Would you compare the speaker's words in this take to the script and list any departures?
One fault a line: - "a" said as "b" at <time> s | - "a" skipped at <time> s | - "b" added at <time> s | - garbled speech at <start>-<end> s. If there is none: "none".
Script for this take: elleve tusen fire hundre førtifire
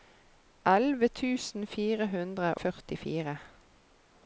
none